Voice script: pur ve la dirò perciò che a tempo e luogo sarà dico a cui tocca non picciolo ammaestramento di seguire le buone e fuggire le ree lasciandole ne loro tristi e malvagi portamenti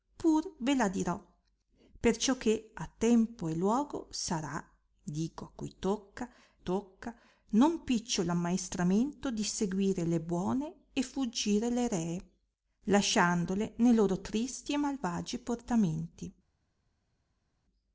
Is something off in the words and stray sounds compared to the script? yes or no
yes